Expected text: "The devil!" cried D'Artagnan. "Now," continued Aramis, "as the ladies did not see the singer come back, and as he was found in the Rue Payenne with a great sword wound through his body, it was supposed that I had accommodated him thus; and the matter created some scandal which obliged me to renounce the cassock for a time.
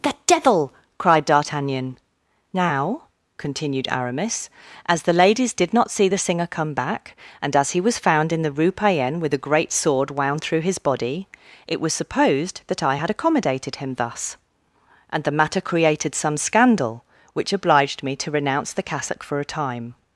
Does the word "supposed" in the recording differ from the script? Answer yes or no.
no